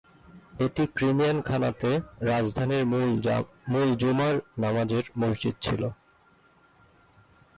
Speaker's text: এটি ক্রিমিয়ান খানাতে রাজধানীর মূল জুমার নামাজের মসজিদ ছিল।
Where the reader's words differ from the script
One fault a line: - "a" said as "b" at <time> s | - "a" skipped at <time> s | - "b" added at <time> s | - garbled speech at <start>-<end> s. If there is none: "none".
none